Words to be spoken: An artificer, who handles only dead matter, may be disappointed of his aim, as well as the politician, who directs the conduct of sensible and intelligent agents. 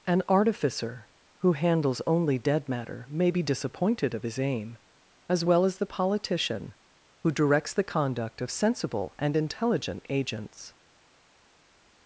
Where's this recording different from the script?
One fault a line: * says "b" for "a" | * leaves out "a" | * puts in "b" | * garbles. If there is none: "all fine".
all fine